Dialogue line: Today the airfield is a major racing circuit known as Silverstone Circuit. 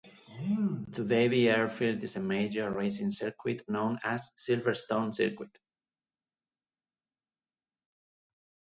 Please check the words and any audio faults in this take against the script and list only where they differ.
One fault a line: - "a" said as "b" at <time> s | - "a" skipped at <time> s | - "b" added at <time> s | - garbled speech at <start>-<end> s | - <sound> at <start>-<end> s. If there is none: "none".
none